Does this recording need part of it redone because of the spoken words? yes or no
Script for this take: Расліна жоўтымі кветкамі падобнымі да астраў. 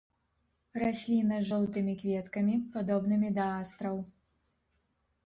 yes